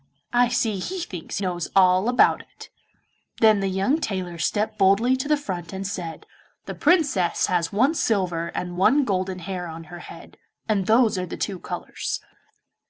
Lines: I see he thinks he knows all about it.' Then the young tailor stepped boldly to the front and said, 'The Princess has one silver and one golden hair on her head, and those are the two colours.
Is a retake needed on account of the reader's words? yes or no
yes